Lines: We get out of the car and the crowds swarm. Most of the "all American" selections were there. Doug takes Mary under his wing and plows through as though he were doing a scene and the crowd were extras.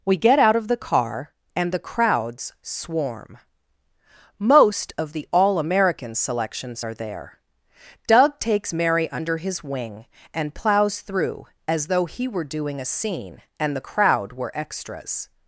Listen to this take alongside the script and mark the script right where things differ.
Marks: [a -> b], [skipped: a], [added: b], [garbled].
We get out of the car and the crowds swarm. Most of the "all American" selections [were -> are] there. Doug takes Mary under his wing and plows through as though he were doing a scene and the crowd were extras.